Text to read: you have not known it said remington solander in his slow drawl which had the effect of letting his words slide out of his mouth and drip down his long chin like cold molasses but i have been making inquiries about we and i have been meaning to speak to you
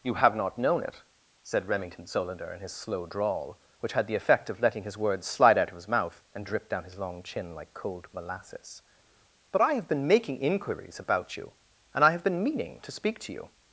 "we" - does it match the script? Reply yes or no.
no